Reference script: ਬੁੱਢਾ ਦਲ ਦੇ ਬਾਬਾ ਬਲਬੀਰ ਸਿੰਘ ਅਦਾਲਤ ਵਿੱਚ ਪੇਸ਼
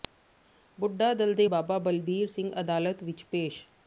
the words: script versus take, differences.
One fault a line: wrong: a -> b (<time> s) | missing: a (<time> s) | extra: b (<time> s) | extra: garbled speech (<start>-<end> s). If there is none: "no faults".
no faults